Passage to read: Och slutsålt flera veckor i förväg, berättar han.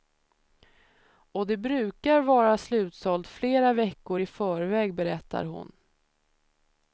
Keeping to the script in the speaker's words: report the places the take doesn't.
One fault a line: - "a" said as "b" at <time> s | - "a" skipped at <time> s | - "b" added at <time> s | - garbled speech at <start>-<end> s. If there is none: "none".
- "det brukar vara" added at 1.5 s
- "han" said as "hon" at 5.4 s